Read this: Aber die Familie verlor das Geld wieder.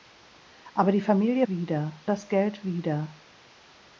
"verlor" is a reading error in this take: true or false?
true